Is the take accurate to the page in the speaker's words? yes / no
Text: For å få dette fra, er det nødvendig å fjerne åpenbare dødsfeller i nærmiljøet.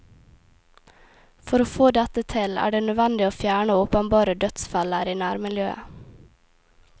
no